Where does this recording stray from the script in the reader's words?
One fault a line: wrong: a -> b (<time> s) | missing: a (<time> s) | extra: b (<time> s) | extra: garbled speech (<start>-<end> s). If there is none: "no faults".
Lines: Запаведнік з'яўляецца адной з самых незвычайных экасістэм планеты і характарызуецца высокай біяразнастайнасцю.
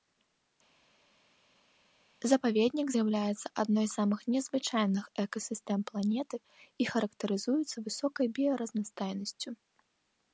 no faults